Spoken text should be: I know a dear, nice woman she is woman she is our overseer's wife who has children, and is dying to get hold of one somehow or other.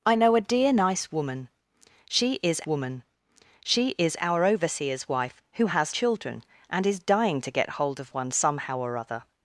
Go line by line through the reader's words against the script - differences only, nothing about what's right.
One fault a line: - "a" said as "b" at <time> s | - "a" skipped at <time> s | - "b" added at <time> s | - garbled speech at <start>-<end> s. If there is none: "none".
none